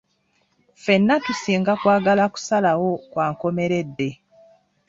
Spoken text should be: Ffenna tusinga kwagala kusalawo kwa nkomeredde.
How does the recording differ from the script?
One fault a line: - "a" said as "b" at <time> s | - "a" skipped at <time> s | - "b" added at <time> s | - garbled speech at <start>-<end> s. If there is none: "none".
none